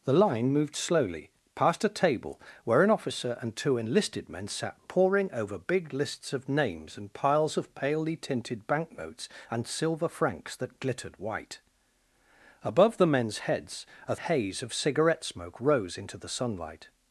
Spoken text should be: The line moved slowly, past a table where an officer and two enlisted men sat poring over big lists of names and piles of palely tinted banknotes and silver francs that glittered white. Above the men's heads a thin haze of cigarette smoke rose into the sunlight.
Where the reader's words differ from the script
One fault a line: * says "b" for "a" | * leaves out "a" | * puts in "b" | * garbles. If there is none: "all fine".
* leaves out "thin"